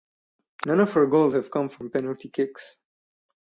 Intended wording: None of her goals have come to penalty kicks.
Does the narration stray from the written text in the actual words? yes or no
yes